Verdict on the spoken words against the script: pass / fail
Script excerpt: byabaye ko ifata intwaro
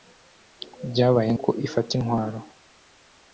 pass